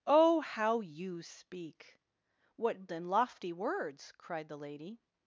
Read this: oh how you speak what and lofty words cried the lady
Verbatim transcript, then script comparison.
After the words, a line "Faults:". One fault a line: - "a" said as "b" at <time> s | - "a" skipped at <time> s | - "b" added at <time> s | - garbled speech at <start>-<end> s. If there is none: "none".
oh how you speak what and lofty words cried the lady
Faults:
none